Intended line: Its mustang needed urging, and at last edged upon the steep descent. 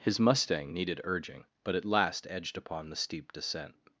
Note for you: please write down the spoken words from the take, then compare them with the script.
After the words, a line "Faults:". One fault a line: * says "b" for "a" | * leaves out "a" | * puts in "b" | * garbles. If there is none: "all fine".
His mustang needed urging, but at last edged upon the steep descent.
Faults:
* says "His" for "Its"
* says "but" for "and"